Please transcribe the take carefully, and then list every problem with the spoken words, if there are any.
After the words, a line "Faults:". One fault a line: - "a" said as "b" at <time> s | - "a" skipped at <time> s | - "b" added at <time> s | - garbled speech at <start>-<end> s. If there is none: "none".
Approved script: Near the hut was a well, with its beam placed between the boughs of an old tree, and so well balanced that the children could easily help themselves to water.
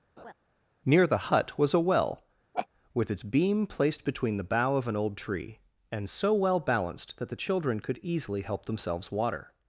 Near the hut was a well, with its beam placed between the bough of an old tree, and so well balanced that the children could easily help themselves water.
Faults:
- "boughs" said as "bough" at 4.4 s
- "to" skipped at 9.1 s